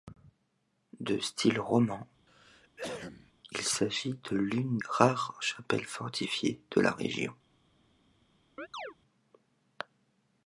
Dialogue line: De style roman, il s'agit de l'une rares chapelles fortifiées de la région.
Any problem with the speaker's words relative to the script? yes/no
no